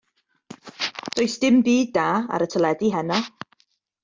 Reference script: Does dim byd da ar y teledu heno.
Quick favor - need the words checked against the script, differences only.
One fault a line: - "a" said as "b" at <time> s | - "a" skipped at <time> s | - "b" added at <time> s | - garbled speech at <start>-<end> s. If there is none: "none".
none